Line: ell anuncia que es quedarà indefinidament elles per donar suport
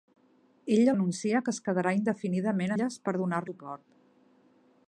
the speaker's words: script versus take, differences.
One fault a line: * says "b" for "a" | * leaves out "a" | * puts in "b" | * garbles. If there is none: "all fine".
all fine